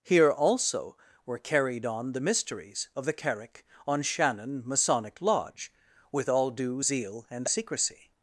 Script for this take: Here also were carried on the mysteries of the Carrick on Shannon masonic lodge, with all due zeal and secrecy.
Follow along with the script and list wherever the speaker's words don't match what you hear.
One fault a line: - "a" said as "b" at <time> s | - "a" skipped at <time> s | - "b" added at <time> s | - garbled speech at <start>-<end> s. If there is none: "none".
none